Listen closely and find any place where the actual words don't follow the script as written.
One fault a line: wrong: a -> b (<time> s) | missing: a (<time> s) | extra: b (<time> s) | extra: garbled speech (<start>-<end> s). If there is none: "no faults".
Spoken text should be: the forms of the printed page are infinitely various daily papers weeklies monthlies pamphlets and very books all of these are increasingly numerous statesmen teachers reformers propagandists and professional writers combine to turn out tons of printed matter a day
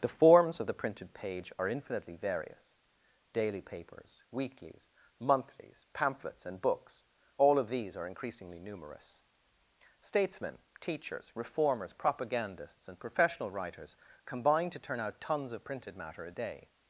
missing: very (6.6 s)